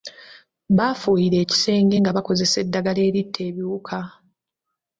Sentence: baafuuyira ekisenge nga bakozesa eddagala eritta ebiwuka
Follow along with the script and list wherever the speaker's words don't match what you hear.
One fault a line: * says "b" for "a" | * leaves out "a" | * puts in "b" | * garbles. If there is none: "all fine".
all fine